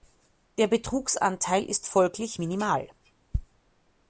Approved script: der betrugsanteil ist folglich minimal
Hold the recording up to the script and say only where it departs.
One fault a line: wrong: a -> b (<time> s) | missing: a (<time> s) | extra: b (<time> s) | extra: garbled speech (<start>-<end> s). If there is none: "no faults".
no faults